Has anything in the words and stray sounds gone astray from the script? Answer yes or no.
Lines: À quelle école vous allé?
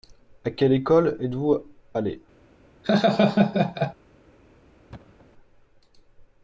yes